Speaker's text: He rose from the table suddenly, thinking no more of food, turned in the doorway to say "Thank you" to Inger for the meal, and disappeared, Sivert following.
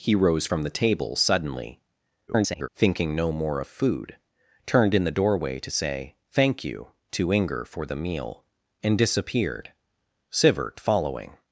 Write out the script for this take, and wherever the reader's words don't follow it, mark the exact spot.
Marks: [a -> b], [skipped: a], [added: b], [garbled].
He rose from the table suddenly, [garbled] thinking no more of food, turned in the doorway to say "Thank you" to Inger for the meal, and disappeared, Sivert following.